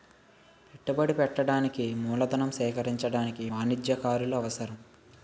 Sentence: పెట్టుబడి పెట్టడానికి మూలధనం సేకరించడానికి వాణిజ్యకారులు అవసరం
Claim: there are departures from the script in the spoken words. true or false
false